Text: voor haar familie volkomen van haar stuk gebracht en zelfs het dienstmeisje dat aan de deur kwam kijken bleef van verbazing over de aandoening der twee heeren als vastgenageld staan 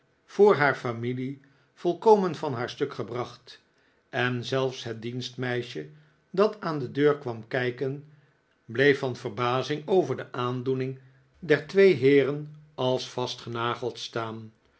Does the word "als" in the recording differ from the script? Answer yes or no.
no